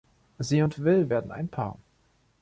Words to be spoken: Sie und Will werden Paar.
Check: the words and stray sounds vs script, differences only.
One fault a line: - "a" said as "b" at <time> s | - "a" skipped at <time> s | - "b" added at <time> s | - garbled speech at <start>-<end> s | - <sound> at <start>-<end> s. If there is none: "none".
- "ein" added at 1.3 s